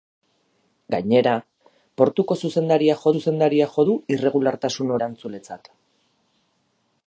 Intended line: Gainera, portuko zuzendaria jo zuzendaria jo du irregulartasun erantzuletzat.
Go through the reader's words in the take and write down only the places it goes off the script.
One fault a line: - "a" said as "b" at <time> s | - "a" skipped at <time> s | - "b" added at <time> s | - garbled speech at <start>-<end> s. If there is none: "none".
none